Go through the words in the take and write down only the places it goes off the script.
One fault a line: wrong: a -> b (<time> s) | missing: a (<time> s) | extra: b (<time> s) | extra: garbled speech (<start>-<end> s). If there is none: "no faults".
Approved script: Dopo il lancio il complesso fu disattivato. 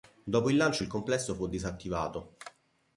no faults